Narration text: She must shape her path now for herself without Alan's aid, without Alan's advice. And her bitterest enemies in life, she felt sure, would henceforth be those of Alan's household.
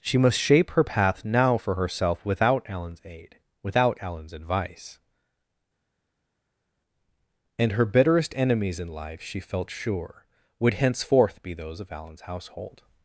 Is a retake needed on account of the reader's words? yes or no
no